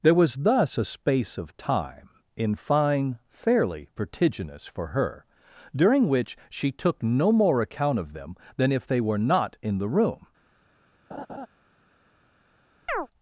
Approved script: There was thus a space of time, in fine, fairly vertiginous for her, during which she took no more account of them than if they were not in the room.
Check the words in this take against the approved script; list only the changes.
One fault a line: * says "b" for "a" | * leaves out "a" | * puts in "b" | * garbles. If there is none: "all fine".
all fine